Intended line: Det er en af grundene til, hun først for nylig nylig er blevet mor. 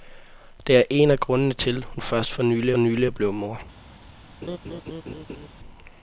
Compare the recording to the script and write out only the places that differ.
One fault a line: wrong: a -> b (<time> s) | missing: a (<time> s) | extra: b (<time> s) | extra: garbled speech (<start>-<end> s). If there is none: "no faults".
no faults